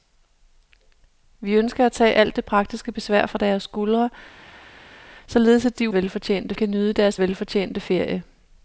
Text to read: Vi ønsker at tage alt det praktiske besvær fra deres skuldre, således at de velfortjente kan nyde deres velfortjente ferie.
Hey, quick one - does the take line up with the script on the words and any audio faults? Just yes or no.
yes